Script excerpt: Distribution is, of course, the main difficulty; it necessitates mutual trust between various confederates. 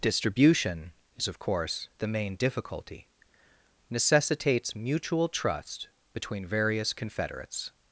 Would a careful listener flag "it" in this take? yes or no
yes